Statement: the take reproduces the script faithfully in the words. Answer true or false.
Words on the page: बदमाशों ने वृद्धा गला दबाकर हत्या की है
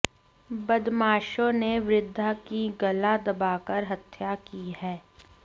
false